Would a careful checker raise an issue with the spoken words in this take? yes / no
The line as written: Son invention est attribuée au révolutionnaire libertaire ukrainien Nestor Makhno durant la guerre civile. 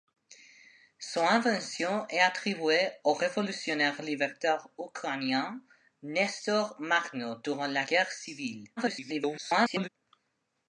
yes